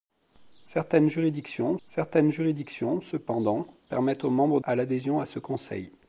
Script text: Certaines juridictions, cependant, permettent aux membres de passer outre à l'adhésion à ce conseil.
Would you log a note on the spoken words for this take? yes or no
yes